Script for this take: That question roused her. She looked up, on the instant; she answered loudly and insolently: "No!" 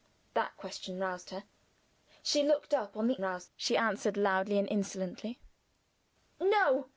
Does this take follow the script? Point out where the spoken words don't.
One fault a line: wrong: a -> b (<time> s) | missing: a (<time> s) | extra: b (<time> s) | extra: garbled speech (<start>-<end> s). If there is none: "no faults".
wrong: instant -> roused (3.2 s)